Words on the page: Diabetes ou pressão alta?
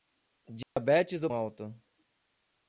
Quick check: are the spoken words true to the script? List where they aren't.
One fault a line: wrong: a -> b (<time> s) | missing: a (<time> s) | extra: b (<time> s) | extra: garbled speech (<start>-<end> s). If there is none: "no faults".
missing: pressão (1.3 s)